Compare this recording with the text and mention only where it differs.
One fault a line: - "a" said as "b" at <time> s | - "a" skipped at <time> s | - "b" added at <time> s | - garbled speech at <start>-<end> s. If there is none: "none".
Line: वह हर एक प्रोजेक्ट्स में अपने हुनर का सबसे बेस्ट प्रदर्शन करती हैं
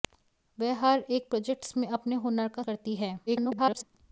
- "सबसे बेस्ट प्रदर्शन" skipped at 2.6 s
- garbled speech at 3.3-3.8 s